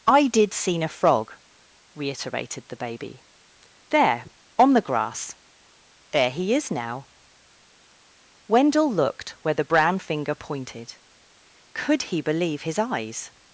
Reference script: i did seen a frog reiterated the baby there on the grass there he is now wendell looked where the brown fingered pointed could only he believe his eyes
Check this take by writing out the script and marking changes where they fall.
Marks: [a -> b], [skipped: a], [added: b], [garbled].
i did seen a frog reiterated the baby there on the grass there he is now wendell looked where the brown [fingered -> finger] pointed could [skipped: only] he believe his eyes